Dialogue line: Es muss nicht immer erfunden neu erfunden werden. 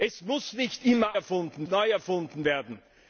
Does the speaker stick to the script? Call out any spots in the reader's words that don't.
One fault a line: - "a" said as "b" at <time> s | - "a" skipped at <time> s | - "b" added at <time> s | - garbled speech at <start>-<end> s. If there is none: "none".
none